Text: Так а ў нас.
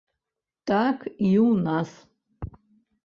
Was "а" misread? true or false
true